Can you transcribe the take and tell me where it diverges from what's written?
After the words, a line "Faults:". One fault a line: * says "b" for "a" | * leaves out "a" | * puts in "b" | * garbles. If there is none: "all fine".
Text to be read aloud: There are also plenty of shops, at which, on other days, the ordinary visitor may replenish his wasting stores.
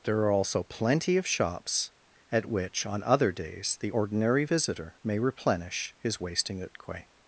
There are also plenty of shops, at which, on other days, the ordinary visitor may replenish his wasting utque.
Faults:
* says "utque" for "stores"